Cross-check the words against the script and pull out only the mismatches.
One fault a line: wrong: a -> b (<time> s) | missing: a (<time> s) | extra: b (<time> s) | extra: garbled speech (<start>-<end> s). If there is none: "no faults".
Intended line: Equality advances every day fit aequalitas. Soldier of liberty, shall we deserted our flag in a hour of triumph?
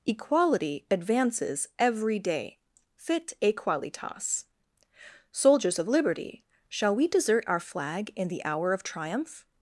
wrong: Soldier -> Soldiers (5.3 s)
wrong: deserted -> desert (7.1 s)
wrong: a -> the (8.3 s)